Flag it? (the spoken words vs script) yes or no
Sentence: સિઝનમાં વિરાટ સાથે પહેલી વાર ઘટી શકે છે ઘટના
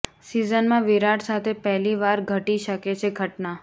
no